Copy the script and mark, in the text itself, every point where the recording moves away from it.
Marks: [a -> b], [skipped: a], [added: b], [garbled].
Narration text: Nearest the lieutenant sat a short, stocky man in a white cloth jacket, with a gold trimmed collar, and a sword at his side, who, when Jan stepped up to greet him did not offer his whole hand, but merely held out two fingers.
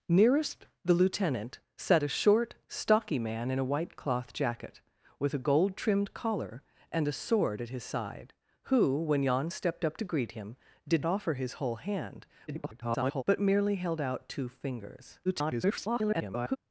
Nearest the lieutenant sat a short, stocky man in a white cloth jacket, with a gold trimmed collar, and a sword at his side, who, when Jan stepped up to greet him did [skipped: not] offer his whole hand, [garbled] but merely held out two fingers. [garbled]